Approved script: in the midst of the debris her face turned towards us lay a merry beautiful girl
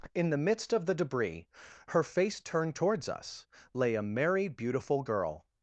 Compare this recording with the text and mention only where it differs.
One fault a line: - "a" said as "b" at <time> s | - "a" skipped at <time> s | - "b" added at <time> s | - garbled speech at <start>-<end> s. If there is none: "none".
none